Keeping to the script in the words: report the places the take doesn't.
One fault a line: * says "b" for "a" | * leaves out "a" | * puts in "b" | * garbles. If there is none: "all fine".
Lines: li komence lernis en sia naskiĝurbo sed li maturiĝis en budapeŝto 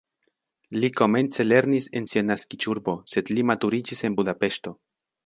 all fine